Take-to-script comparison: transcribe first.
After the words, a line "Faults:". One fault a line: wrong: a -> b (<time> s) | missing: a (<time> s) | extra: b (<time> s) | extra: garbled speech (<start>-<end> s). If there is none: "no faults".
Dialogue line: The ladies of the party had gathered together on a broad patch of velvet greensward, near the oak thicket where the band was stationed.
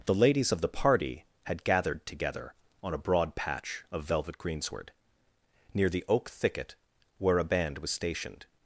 The ladies of the party had gathered together on a broad patch of velvet greensward, near the oak thicket where a band was stationed.
Faults:
wrong: the -> a (7.4 s)